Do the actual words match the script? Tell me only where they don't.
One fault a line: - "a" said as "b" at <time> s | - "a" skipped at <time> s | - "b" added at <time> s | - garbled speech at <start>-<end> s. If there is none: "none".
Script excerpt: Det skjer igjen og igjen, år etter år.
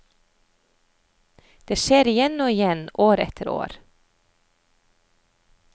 none